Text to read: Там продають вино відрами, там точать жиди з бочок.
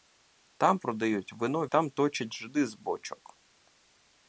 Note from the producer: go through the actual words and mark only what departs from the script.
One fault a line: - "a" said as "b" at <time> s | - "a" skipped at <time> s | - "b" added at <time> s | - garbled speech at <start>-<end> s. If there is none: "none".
- "відрами" skipped at 1.7 s